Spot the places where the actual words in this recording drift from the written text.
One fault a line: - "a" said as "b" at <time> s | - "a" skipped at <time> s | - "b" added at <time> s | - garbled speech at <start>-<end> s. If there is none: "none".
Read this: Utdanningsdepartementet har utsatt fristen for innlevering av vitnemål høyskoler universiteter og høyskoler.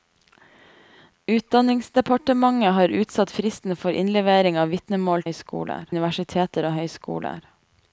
none